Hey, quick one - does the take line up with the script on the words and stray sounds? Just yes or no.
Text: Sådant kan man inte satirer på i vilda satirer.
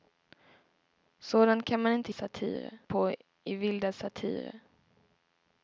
yes